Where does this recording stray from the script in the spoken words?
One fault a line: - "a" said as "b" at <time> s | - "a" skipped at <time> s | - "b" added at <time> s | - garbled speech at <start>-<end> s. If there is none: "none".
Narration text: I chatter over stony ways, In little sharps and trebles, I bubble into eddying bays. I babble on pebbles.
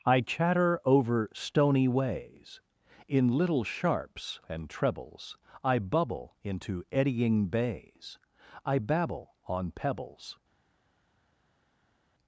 none